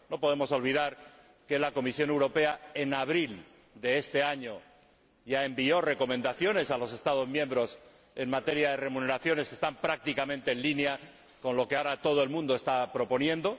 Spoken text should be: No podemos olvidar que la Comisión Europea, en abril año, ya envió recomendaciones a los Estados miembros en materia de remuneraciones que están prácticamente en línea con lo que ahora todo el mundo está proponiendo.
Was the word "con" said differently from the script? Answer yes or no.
no